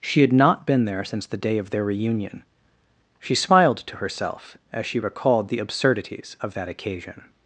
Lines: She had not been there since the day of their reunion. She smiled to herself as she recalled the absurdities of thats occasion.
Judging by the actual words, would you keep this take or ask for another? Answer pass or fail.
fail